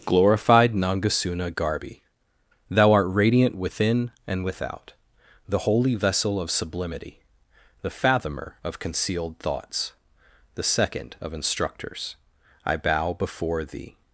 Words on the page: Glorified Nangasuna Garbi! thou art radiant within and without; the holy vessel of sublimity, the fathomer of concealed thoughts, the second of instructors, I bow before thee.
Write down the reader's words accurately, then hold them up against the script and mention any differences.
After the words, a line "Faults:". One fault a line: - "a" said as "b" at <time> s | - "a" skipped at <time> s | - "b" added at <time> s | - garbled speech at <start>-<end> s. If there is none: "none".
Glorified Nangasuna Garbi! thou art radiant within and without; the holy vessel of sublimity, the fathomer of concealed thoughts, the second of instructors, I bow before thee.
Faults:
none